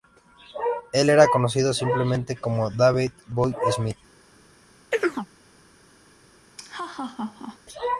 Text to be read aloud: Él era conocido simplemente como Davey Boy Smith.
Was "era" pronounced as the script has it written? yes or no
yes